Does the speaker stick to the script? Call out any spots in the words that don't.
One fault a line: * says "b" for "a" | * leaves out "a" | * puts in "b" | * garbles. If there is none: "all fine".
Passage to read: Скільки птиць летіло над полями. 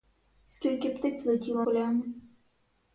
* leaves out "над"